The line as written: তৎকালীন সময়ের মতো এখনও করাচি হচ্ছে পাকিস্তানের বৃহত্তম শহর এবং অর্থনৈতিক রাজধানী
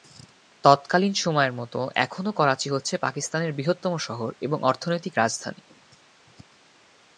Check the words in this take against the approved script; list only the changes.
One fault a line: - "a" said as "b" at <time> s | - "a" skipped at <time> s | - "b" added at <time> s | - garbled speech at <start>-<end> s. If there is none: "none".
none